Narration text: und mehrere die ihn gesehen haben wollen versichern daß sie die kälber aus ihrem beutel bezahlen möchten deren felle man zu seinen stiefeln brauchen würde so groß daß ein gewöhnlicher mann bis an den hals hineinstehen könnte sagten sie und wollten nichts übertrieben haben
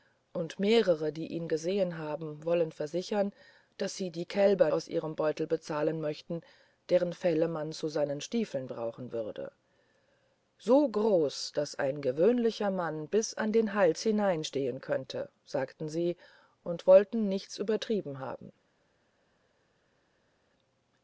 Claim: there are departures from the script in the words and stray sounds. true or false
false